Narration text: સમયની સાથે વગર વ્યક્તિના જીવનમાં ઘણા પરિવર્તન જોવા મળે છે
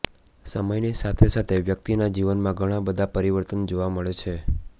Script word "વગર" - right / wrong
wrong